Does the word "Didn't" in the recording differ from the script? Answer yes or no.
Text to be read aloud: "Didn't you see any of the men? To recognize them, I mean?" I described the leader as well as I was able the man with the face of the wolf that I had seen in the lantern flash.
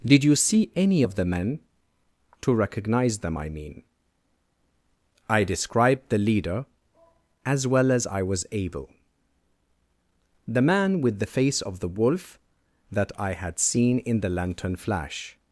yes